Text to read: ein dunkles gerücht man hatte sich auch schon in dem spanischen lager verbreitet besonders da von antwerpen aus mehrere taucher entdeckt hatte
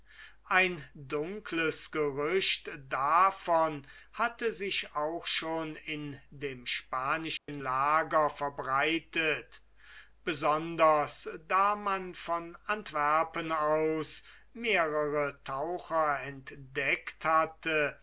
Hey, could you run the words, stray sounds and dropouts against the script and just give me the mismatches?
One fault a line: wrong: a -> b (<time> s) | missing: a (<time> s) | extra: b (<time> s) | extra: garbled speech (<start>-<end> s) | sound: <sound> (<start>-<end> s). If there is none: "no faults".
wrong: man -> davon (2.9 s)
sound: dropout (7.4-7.5 s)
extra: man (11.8 s)